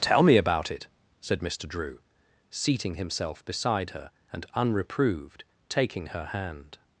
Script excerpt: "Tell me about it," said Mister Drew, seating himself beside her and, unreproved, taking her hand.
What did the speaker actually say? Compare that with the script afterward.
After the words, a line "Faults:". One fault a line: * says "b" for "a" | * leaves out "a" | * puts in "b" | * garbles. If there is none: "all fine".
"Tell me about it," said Mister Drew, seating himself beside her and, unreproved, taking her hand.
Faults:
all fine